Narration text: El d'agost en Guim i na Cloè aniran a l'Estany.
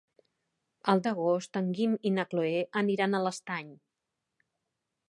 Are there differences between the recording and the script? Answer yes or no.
no